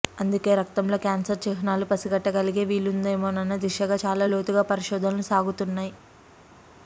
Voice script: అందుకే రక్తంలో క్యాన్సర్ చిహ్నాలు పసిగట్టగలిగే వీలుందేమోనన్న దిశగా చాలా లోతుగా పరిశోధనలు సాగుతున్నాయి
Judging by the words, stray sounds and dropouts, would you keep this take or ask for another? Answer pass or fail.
pass